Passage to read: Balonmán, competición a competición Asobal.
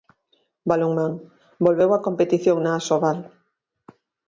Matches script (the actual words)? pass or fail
fail